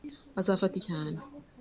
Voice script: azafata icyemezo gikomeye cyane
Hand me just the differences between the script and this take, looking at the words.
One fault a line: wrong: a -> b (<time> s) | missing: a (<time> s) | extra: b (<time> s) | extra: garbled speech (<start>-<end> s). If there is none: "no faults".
missing: icyemezo gikomeye (0.8 s)